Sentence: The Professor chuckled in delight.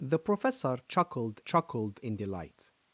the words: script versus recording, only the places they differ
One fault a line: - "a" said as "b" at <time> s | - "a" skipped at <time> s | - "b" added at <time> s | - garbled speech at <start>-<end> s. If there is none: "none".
- "chuckled" added at 1.4 s